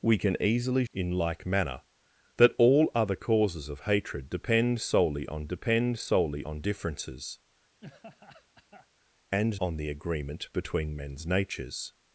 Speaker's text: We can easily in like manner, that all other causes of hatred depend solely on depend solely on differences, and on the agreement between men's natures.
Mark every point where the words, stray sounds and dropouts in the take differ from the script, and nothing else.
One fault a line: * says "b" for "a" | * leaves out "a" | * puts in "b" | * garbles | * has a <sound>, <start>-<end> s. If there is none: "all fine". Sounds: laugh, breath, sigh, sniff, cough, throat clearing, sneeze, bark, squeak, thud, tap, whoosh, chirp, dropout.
* has a laugh, 7.8-8.9 s